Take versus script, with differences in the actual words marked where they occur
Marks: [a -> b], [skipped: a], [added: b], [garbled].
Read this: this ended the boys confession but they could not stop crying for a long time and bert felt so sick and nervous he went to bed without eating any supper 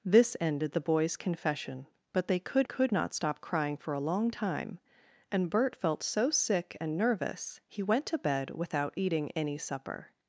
this ended the boys confession but they could [added: could] not stop crying for a long time and bert felt so sick and nervous he went to bed without eating any supper